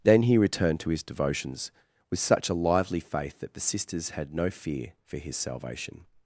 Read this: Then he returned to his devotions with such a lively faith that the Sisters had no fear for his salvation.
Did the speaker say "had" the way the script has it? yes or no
yes